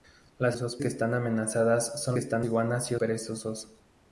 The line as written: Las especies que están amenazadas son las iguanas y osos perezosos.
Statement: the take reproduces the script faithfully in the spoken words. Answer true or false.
false